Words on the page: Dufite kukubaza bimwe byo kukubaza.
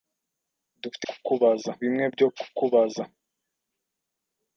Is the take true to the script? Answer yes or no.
yes